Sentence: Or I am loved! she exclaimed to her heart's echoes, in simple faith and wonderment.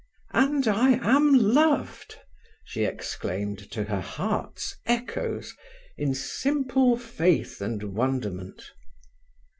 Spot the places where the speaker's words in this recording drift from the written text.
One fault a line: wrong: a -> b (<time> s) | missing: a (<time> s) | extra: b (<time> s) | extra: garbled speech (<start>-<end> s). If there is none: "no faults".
wrong: Or -> And (0.3 s)